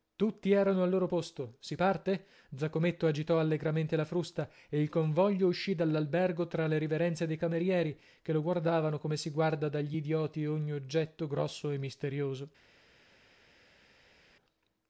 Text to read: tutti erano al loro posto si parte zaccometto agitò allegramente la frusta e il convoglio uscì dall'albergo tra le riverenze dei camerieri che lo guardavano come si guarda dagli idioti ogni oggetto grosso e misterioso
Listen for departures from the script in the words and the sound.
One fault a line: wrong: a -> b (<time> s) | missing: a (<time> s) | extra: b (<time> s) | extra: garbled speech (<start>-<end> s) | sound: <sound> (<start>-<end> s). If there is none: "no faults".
no faults